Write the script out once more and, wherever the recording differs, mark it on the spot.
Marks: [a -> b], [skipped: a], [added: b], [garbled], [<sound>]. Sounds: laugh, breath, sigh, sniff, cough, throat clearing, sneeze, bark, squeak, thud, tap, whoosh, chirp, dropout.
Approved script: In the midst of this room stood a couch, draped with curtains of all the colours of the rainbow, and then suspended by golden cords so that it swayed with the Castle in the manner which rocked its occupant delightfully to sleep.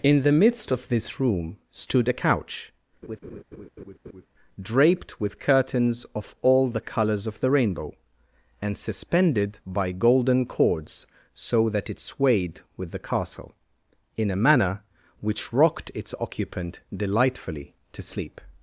In the midst of this room stood a couch, [laugh] draped with curtains of all the colours of the rainbow, and [skipped: then] suspended by golden cords so that it swayed with the Castle in [the -> a] manner which rocked its occupant delightfully to sleep.